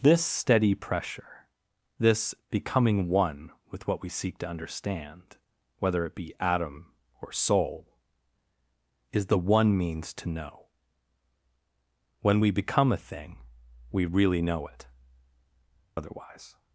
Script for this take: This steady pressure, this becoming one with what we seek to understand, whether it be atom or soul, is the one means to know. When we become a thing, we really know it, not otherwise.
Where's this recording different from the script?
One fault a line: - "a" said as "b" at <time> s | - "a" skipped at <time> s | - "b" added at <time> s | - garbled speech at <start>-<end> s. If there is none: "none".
- "not" skipped at 14.9 s